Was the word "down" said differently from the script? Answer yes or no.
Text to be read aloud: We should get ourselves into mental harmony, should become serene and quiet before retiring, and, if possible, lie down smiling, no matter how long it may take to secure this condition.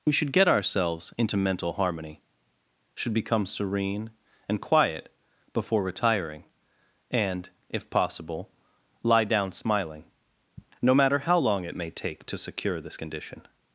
no